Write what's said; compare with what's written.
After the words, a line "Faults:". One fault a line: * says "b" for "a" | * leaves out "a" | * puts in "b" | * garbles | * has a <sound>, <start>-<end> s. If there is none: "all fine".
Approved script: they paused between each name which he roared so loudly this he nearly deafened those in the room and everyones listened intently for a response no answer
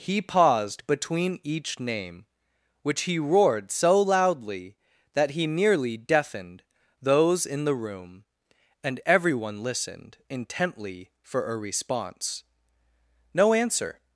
he paused between each name which he roared so loudly that he nearly deafened those in the room and everyone listened intently for a response no answer
Faults:
* says "he" for "they"
* says "that" for "this"
* says "everyone" for "everyones"